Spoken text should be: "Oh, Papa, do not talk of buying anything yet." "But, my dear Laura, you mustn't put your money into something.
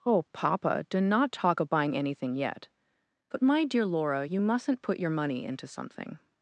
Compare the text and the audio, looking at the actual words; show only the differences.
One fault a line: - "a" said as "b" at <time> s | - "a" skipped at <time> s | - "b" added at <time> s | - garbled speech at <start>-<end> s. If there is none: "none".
none